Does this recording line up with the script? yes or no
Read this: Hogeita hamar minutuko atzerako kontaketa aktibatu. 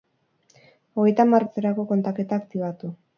no